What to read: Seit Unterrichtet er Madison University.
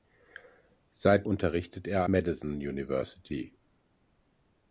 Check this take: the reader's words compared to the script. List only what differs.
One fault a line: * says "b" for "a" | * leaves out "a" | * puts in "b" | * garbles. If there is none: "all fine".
all fine